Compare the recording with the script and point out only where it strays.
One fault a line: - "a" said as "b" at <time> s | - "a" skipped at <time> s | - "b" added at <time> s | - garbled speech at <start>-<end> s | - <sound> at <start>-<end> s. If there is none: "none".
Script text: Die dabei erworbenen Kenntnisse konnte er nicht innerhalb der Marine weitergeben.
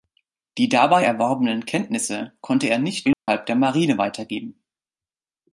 - dropout at 3.1-3.3 s